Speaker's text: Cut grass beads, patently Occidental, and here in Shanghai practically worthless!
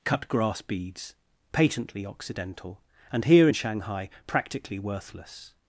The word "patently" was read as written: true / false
true